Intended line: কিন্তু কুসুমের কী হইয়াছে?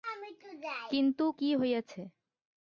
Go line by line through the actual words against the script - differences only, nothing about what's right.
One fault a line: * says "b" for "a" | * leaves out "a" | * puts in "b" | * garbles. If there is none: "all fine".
* leaves out "কুসুমের"